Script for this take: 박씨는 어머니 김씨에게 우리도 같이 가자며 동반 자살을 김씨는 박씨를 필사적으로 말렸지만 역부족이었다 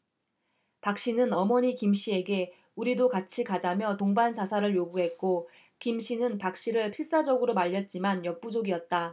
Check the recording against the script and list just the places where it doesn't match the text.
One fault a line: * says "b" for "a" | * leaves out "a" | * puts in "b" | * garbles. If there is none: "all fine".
* puts in "요구했고"